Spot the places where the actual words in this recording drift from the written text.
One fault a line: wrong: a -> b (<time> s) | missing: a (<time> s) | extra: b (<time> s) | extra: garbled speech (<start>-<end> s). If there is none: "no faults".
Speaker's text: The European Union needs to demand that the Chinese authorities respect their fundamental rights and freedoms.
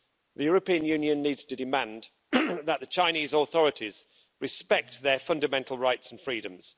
no faults